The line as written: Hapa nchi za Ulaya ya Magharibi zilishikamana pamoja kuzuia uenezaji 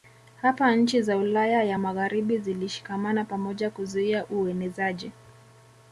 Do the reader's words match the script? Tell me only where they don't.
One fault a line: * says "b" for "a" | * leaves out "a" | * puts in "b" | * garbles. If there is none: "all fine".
all fine